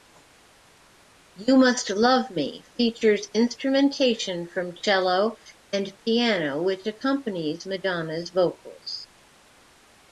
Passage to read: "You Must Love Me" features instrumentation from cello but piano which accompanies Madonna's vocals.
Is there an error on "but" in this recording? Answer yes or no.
yes